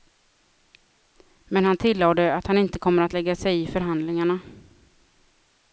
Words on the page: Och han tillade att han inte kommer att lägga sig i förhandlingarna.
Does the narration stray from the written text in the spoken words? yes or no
yes